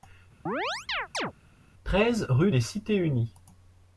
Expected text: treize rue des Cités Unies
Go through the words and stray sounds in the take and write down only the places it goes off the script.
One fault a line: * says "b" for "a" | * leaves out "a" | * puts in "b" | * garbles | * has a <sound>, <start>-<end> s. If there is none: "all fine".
* has a chirp, 0.5-1.3 s